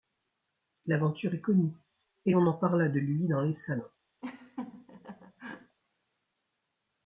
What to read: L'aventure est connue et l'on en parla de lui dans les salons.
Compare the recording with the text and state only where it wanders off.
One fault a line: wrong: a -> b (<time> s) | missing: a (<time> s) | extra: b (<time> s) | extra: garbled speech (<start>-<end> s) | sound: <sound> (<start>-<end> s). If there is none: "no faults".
sound: laugh (4.2-5.8 s)